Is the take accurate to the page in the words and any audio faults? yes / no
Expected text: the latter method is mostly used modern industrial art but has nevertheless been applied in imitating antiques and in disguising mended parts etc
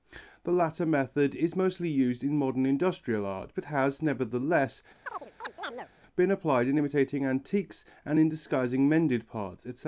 no